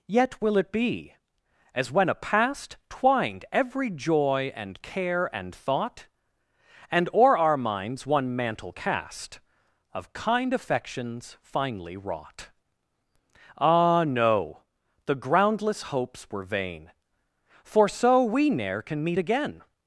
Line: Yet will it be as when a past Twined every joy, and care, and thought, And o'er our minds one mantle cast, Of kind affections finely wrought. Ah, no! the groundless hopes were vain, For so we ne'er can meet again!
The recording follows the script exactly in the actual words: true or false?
true